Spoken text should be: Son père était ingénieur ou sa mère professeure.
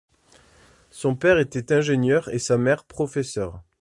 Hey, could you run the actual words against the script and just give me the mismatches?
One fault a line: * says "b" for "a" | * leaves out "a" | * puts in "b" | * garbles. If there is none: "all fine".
* says "et" for "ou"